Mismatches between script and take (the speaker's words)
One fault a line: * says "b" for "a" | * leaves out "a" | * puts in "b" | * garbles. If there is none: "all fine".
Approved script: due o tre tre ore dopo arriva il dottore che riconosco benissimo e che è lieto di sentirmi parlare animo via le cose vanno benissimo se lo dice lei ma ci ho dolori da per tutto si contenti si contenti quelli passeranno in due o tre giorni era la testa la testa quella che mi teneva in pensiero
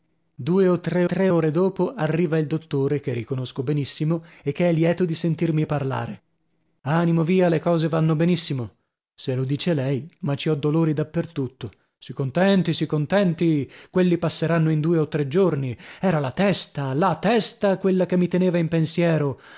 all fine